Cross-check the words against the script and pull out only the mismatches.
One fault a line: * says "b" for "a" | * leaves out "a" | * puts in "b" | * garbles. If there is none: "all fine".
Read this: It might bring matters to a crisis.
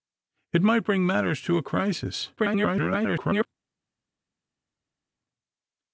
* garbles